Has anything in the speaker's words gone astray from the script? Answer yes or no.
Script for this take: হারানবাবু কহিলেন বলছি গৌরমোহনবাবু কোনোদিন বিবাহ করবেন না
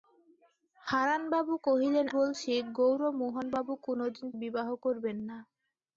no